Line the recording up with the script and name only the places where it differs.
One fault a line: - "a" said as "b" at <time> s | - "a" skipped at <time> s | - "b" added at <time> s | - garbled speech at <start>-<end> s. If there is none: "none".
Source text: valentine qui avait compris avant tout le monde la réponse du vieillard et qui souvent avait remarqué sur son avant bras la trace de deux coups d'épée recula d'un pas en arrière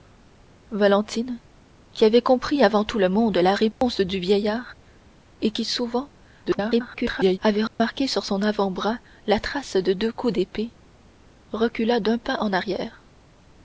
- garbled speech at 6.4-7.4 s